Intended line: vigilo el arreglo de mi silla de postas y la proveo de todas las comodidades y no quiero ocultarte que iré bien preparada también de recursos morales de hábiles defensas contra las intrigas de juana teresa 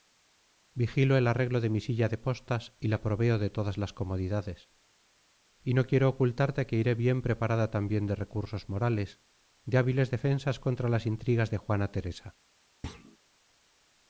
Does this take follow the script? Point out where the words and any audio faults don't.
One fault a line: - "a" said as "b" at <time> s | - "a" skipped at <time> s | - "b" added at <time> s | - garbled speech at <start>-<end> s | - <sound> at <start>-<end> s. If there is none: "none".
- thud at 12.8-13.2 s